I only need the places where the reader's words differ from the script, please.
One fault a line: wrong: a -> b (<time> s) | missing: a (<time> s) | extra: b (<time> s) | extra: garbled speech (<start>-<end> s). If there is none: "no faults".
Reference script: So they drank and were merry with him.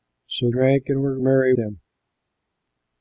missing: they (0.5 s)
missing: with (1.5 s)